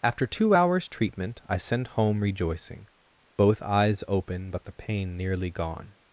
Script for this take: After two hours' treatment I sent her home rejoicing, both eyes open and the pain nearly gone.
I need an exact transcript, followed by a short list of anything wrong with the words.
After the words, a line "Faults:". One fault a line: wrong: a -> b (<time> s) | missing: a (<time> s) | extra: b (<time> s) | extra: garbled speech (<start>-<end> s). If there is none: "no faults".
After two hours' treatment I sent home rejoicing, both eyes open but the pain nearly gone.
Faults:
missing: her (1.9 s)
wrong: and -> but (4.5 s)